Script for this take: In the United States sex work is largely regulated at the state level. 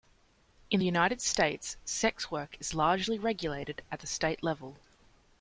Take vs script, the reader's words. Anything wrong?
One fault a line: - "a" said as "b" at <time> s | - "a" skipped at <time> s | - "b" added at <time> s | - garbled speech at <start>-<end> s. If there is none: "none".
none